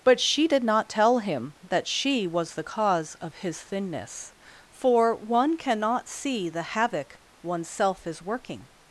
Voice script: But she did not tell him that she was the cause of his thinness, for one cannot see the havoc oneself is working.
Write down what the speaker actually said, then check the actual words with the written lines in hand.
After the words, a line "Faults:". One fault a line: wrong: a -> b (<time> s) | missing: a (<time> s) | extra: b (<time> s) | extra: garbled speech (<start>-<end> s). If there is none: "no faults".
But she did not tell him that she was the cause of his thinness, for one cannot see the havoc oneself is working.
Faults:
no faults